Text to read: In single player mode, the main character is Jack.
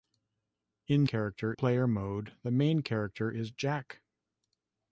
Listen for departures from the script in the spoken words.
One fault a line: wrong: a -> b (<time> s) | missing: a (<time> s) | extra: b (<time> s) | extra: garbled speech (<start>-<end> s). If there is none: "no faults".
wrong: single -> character (1.0 s)